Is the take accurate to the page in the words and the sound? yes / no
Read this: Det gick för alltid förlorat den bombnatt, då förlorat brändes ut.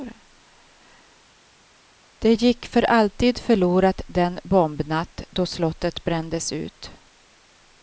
no